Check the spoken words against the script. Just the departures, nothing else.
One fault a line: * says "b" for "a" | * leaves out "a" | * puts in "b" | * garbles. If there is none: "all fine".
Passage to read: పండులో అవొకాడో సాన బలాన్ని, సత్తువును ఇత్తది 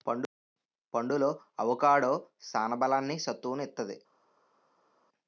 all fine